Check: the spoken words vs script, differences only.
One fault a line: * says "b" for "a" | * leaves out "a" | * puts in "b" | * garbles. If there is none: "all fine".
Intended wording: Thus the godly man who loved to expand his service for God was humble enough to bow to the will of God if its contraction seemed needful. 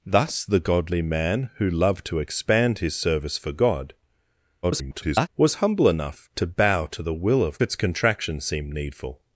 * garbles
* leaves out "God if"